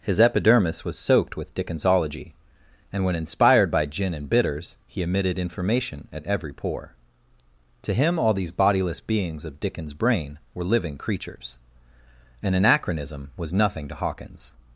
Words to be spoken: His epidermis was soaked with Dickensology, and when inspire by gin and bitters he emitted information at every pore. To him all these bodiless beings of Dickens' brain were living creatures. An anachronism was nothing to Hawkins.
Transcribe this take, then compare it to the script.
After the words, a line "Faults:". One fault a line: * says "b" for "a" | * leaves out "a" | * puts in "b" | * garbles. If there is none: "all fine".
His epidermis was soaked with Dickensology, and when inspired by gin and bitters he emitted information at every pore. To him all these bodiless beings of Dickens' brain were living creatures. An anachronism was nothing to Hawkins.
Faults:
* says "inspired" for "inspire"